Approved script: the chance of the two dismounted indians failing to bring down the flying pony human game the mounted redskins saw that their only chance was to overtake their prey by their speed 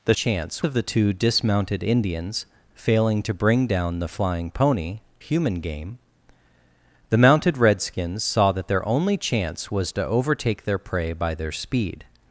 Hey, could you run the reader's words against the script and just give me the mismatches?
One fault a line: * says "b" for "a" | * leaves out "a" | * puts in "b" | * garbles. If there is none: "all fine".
all fine